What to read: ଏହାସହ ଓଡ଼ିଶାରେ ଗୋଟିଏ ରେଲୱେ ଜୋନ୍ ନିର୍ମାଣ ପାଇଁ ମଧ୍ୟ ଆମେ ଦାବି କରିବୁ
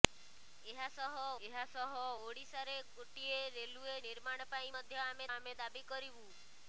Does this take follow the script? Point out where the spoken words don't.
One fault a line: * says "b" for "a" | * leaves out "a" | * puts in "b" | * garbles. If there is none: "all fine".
* puts in "ଏହାସହ"
* leaves out "ଜୋନ୍"
* puts in "ଆମେ"